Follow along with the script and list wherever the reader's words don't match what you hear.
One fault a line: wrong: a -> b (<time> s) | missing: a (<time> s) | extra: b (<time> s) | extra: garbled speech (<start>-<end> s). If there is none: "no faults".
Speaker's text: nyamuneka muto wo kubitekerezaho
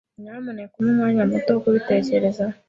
extra: umpe umwanya (0.8 s)